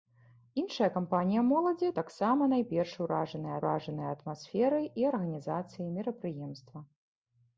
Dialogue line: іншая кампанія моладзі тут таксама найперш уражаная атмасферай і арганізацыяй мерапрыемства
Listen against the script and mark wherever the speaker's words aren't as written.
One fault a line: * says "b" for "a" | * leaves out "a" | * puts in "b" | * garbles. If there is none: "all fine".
* leaves out "тут"
* puts in "уражаная"